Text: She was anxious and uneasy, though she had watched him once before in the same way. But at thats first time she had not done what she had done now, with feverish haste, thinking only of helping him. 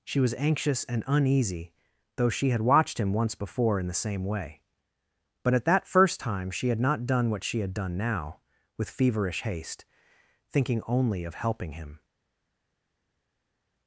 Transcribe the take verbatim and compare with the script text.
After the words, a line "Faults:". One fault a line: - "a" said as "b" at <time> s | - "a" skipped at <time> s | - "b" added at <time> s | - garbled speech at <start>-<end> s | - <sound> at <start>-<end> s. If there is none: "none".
She was anxious and uneasy, though she had watched him once before in the same way. But at that first time she had not done what she had done now, with feverish haste, thinking only of helping him.
Faults:
- "thats" said as "that" at 5.7 s